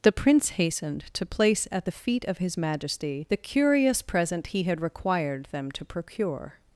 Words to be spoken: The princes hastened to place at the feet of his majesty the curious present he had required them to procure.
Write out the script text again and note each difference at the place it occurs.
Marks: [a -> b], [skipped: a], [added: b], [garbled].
The [princes -> prince] hastened to place at the feet of his majesty the curious present he had required them to procure.